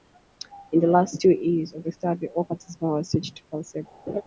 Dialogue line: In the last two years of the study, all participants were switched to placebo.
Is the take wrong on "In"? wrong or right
right